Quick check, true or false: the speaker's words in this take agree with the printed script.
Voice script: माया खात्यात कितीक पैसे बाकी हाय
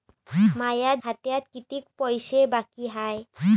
true